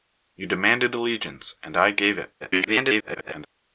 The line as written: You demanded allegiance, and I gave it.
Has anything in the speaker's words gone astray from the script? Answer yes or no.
yes